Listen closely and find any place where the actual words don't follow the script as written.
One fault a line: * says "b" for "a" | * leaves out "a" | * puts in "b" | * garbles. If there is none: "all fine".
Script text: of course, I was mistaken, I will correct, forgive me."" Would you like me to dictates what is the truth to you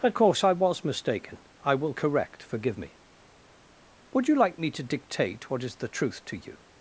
* says "dictate" for "dictates"